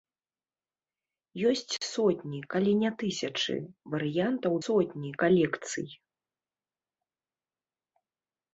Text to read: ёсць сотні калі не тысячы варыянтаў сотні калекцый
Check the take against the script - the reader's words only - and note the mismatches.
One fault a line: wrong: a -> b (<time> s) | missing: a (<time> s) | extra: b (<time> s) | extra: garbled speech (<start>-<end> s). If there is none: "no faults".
no faults